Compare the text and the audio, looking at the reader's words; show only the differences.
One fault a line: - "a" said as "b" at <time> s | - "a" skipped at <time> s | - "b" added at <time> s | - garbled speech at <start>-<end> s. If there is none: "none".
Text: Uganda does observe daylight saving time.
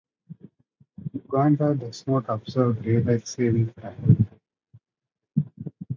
- "not" added at 2.1 s